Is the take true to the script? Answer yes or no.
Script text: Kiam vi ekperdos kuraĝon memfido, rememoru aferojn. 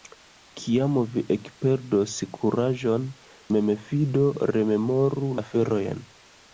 yes